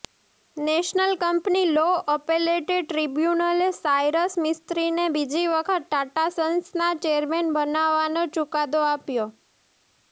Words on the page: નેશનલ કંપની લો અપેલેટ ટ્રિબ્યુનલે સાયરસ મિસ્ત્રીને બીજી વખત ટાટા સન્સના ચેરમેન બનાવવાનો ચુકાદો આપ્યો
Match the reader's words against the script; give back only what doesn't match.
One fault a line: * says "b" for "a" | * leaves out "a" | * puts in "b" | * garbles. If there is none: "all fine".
all fine